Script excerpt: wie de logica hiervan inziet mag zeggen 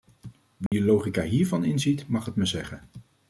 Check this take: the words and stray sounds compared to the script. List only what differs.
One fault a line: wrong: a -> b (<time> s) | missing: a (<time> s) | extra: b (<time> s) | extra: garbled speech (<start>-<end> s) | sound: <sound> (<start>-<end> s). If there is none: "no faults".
sound: dropout (0.7-0.7 s)
extra: het me (2.2 s)